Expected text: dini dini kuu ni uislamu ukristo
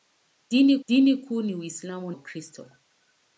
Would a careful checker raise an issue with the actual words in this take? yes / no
no